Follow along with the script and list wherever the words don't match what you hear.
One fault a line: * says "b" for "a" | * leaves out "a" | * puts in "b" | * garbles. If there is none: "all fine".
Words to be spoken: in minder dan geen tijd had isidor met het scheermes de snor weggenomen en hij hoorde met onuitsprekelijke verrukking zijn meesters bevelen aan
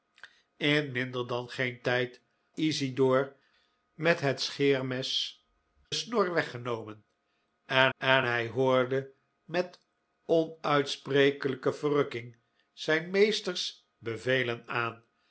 * leaves out "had"
* leaves out "de"
* puts in "en"